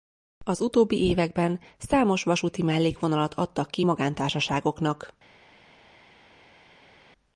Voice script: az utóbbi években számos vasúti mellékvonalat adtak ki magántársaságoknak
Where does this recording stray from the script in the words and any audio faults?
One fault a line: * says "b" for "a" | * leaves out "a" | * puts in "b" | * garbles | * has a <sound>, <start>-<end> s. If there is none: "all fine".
all fine